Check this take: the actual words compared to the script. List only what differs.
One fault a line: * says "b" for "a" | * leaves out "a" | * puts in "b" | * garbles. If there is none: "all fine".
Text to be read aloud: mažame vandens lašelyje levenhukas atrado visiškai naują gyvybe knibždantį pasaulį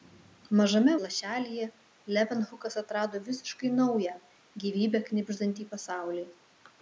* leaves out "vandens"